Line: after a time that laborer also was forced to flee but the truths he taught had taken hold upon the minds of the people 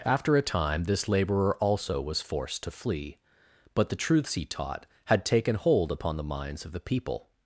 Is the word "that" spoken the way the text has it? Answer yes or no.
no